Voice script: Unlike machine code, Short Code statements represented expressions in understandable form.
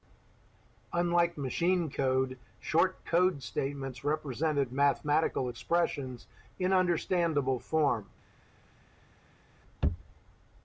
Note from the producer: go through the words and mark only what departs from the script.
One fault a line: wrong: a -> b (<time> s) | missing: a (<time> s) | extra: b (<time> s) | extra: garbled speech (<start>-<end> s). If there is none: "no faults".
extra: mathematical (4.7 s)